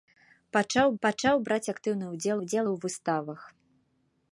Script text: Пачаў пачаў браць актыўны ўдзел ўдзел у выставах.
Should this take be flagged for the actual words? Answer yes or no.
no